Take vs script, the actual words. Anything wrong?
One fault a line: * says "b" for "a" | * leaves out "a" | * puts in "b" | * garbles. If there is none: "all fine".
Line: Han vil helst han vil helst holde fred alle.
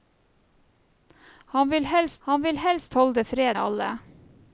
all fine